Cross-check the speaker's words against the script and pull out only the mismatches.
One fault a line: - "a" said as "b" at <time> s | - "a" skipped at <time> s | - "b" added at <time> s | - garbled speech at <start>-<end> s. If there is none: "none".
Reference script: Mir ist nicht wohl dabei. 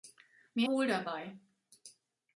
- "ist nicht" skipped at 0.7 s